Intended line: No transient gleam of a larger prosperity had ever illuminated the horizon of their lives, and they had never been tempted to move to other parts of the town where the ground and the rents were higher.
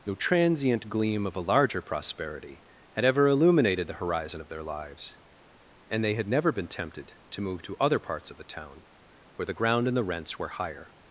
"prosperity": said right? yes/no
yes